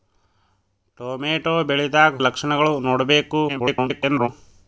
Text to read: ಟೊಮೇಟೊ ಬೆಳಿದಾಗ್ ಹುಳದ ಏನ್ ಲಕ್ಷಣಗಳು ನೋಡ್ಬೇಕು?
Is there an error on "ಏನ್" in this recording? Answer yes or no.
yes